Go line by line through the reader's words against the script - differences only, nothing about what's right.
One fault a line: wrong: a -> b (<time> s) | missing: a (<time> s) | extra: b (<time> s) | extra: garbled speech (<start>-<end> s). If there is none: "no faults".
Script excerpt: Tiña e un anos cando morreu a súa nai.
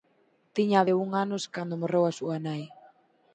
no faults